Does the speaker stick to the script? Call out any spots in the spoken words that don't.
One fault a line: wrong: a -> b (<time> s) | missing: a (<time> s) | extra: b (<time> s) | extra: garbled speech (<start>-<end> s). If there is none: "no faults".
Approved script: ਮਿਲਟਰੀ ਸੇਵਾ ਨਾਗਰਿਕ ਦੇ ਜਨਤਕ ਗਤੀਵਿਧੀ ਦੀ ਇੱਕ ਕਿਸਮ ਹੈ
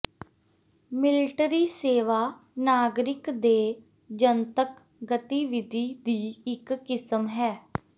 no faults